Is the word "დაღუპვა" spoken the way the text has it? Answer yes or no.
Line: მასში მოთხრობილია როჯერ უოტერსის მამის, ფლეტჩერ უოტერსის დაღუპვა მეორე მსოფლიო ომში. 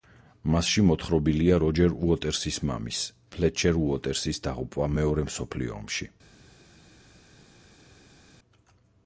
yes